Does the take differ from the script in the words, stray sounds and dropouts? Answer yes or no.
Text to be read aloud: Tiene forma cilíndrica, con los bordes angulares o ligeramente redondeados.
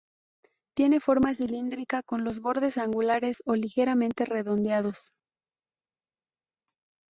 no